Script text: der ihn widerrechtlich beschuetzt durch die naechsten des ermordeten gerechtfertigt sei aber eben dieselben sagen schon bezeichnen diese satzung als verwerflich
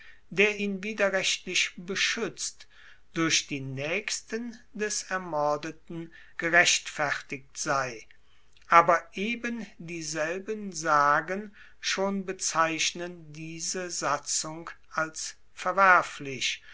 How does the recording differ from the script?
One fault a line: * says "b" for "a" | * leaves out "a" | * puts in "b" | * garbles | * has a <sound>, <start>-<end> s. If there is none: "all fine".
all fine